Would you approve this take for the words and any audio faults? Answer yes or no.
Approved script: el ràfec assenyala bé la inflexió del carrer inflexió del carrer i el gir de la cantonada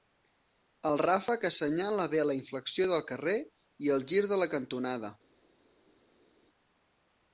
no